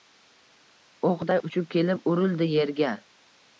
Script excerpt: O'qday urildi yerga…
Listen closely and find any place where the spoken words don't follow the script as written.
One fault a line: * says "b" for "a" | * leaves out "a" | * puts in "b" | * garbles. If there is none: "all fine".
* puts in "uchib kelib"